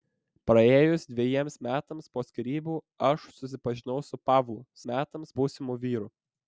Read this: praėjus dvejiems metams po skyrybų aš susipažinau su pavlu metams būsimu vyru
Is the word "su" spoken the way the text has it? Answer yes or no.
yes